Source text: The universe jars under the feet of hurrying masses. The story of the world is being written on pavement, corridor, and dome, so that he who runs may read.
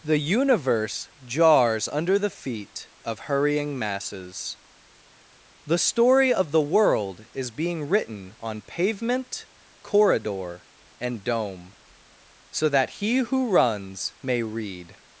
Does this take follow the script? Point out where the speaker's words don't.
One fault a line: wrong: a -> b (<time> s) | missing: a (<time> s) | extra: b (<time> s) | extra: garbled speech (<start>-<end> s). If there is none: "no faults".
no faults